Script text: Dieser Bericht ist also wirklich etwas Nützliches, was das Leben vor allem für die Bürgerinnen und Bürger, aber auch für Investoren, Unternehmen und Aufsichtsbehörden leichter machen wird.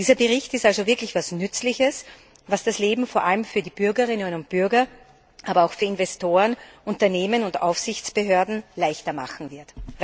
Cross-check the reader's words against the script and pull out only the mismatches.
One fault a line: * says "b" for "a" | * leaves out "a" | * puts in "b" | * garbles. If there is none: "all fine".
all fine